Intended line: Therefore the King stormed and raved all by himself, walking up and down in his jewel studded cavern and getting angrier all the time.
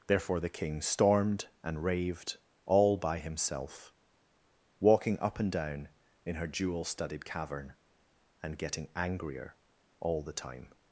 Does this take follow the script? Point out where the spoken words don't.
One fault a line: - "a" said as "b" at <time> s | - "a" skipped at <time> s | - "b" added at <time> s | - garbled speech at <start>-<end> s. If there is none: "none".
- "his" said as "her" at 6.3 s